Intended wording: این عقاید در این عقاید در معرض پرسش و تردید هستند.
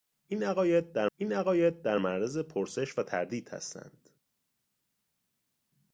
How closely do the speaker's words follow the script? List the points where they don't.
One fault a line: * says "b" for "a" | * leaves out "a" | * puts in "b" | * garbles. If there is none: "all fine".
all fine